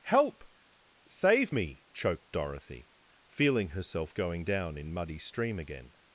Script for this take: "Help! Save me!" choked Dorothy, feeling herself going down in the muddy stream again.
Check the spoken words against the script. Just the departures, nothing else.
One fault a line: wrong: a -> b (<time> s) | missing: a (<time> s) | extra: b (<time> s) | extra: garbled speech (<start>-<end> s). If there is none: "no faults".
missing: the (4.9 s)